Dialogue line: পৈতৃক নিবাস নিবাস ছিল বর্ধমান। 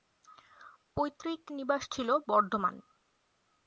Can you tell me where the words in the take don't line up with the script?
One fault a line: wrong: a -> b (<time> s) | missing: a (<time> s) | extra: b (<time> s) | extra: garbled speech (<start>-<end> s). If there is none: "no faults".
missing: নিবাস (1.8 s)